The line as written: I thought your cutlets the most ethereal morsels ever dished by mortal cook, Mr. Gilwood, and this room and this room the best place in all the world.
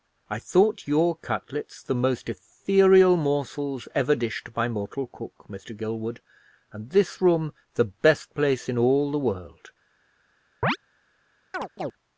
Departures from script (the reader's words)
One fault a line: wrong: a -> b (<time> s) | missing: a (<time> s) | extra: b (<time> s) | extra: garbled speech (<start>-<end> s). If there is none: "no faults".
missing: and this room (7.5 s)